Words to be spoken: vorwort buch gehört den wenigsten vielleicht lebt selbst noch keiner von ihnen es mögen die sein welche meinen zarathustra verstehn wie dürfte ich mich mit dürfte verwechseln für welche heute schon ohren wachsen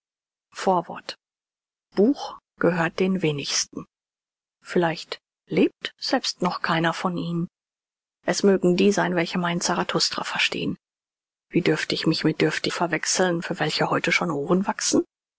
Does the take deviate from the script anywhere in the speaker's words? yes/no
no